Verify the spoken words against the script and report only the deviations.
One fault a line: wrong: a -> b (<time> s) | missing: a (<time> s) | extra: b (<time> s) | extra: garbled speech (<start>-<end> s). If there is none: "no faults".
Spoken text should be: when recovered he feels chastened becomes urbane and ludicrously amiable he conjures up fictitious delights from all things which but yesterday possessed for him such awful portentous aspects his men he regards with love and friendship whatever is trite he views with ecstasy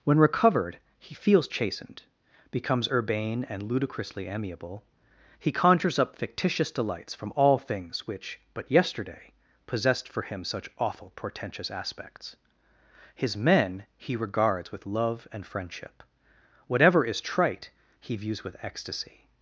no faults